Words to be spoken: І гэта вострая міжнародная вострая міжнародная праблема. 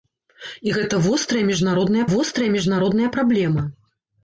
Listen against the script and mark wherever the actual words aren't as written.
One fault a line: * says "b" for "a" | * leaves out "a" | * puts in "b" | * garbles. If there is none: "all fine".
all fine